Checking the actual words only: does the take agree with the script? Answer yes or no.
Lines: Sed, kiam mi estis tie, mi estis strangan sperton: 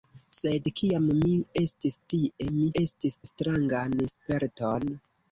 yes